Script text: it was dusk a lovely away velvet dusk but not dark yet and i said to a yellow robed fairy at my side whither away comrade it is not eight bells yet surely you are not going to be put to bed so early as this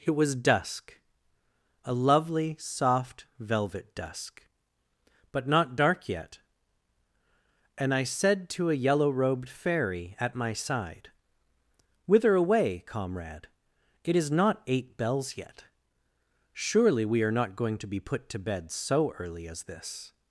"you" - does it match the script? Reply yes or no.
no